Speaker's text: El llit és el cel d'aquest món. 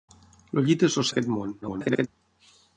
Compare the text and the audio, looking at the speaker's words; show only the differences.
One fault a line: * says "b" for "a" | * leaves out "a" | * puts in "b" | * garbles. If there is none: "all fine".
* leaves out "cel"
* garbles